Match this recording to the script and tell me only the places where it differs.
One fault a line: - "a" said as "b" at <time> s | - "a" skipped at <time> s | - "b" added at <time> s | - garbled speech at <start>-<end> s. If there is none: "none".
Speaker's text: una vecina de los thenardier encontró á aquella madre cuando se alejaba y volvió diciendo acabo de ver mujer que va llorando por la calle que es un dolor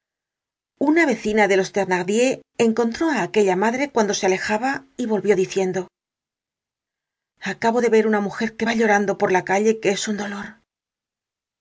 - "una" added at 8.1 s